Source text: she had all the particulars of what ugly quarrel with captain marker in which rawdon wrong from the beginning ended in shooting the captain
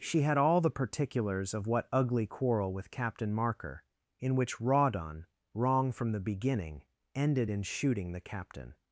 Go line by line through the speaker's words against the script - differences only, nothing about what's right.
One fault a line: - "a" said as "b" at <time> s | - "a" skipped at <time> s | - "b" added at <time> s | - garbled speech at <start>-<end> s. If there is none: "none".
none